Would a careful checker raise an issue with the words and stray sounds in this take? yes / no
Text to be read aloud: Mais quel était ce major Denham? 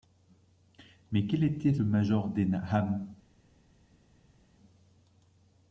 yes